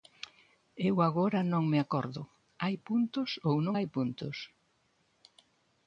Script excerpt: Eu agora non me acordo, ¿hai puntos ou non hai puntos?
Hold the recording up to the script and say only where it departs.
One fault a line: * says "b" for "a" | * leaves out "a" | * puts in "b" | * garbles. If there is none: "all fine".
all fine